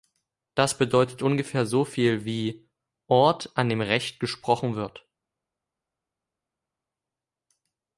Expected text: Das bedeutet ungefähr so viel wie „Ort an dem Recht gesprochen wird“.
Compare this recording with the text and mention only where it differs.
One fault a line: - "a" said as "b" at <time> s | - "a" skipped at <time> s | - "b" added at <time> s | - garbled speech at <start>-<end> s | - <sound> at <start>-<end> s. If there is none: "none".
none